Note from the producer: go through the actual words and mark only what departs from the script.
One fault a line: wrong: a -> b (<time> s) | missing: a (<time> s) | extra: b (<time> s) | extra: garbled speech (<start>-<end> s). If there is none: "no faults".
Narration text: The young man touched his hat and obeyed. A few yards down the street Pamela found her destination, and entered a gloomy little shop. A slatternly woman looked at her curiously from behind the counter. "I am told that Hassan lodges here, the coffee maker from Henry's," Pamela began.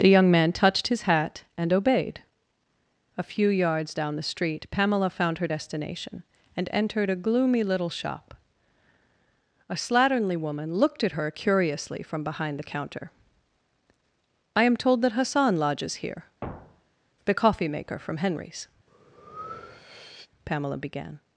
no faults